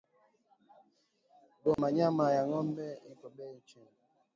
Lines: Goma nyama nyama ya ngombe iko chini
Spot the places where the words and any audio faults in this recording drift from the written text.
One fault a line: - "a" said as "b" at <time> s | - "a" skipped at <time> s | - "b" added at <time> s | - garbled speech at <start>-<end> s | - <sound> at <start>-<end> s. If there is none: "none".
- dropout at 1.7-1.8 s
- "nyama" skipped at 2.2 s
- "beyi" added at 3.4 s